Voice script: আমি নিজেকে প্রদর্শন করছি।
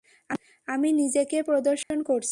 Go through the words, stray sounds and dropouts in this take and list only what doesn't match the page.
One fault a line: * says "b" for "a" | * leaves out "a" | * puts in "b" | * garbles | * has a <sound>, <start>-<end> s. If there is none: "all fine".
* has a dropout, 1.8-1.9 s